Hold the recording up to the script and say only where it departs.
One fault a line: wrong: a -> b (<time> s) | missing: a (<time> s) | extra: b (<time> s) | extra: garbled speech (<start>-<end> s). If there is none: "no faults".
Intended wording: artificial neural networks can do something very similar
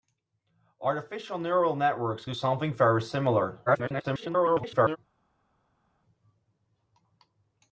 missing: can (2.2 s)
extra: garbled speech (3.7-5.0 s)